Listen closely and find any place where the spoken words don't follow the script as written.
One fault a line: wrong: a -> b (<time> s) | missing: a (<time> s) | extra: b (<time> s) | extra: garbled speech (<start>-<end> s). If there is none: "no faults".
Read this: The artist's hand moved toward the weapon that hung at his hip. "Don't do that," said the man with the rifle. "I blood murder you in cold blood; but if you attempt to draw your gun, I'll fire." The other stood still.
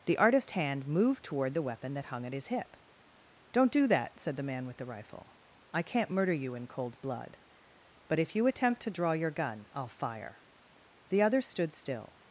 wrong: blood -> can't (5.8 s)